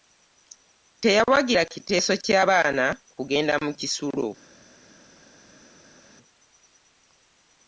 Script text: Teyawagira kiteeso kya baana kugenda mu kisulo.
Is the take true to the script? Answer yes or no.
yes